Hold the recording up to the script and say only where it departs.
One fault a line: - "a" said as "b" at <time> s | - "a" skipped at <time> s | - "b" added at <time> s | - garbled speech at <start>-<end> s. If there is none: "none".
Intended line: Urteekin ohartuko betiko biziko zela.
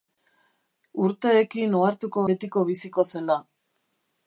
none